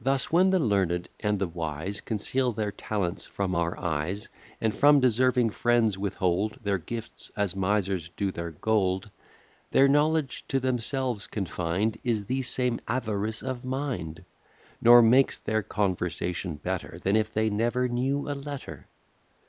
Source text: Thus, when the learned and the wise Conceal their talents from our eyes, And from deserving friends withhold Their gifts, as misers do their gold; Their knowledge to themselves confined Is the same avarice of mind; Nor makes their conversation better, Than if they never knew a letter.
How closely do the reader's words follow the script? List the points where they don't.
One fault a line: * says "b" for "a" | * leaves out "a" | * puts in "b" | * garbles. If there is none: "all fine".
all fine